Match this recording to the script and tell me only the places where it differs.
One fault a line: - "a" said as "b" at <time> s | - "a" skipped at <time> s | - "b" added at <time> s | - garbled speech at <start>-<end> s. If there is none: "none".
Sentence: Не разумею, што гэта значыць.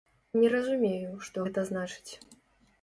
none